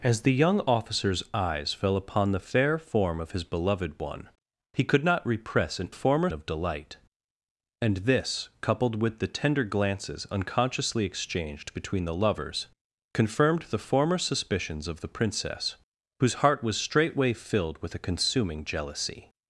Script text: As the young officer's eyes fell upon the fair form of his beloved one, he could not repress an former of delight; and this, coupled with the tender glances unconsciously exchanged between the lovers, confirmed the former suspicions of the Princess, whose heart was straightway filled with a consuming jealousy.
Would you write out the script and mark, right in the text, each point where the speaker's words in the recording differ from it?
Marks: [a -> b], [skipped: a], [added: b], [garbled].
As the young officer's eyes fell upon the fair form of his beloved one, he could not repress an former of delight; and this, coupled with the tender glances unconsciously exchanged between the lovers, confirmed the former suspicions of the Princess, whose heart was straightway filled with a consuming jealousy.